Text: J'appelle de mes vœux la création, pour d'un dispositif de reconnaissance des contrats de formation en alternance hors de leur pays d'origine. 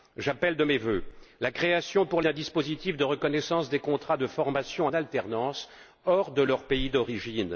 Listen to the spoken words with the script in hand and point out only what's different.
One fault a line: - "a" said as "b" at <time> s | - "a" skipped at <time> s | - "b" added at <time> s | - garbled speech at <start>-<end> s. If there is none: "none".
none